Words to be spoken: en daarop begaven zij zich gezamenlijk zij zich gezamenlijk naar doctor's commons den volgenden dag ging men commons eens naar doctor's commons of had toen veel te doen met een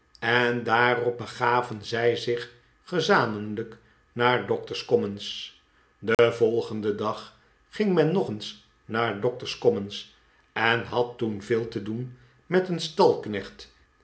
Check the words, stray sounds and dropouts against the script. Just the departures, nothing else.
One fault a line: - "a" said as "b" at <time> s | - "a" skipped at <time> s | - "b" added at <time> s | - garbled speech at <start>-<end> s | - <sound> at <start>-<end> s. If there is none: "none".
- "zij zich gezamenlijk" skipped at 3.8 s
- dropout at 6.1-6.2 s
- "commons" said as "nog" at 8.1 s
- "of" said as "en" at 10.5 s